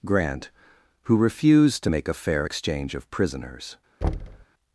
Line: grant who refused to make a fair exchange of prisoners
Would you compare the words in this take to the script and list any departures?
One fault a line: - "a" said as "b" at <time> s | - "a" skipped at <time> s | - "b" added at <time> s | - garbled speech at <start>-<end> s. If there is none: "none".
none